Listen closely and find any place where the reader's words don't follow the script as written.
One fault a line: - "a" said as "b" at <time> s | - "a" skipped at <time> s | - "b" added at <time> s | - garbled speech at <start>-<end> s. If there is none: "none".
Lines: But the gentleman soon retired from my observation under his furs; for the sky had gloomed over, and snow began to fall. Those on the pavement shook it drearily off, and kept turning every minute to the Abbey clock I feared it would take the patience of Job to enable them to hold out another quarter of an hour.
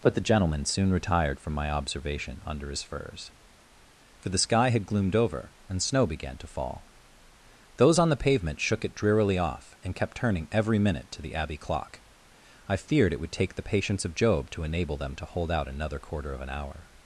none